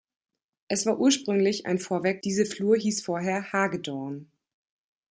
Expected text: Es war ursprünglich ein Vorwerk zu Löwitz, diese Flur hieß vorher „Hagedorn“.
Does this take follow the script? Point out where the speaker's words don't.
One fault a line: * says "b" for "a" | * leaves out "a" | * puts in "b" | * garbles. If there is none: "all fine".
* leaves out "zu Löwitz"